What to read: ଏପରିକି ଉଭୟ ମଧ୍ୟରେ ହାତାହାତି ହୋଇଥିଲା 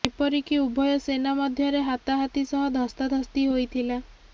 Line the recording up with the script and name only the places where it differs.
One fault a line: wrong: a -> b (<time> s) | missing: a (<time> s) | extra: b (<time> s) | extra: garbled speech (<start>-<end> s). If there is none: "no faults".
extra: ସେନା (1.0 s)
extra: ସହ ଧସ୍ତାଧସ୍ତି (2.5 s)